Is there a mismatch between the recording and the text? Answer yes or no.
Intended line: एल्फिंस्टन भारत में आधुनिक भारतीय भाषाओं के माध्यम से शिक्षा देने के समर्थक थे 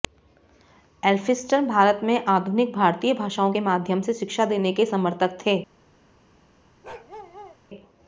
no